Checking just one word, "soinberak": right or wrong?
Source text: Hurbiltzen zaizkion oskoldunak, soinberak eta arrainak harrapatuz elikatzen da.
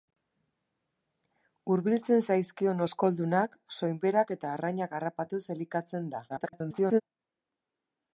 right